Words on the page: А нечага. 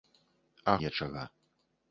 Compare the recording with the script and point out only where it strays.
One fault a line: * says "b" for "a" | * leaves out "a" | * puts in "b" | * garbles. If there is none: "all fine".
all fine